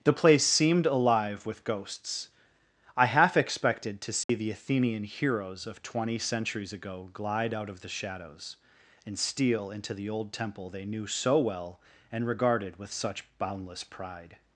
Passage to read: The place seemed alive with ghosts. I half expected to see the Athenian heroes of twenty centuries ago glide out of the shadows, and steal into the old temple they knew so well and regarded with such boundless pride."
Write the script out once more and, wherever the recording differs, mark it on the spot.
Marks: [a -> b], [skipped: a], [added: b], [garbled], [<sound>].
The place seemed alive with ghosts. I half expected to see [dropout] the Athenian heroes of twenty centuries ago glide out of the shadows, and steal into the old temple they knew so well and regarded with such boundless pride."